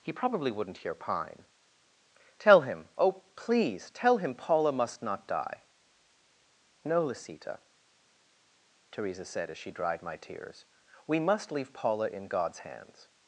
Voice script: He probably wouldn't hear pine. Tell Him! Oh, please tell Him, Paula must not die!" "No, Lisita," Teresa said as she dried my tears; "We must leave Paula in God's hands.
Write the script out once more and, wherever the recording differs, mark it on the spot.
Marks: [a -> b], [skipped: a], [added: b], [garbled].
He probably wouldn't hear pine. Tell Him! Oh, please tell Him, Paula must not die!" "No, Lisita," Teresa said as she dried my tears; "We must leave Paula in God's hands.